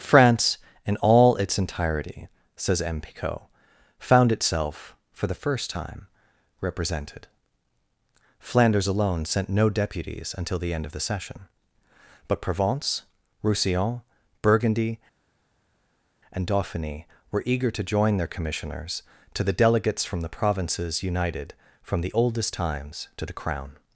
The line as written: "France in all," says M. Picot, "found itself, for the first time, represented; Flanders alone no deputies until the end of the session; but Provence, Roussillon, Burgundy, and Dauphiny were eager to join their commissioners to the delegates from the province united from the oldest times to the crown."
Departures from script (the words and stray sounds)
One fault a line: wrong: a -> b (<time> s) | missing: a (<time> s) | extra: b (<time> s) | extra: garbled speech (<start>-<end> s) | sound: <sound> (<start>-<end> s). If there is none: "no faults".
extra: its entirety (1.4 s)
extra: sent (9.2 s)
wrong: province -> provinces (20.3 s)